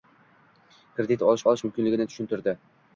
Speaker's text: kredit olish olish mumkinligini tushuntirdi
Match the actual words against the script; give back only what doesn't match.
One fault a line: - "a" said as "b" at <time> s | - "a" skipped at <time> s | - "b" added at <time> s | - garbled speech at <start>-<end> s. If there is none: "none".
none